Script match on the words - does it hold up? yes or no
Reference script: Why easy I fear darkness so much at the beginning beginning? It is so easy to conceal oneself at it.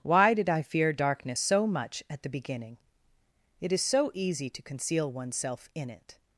no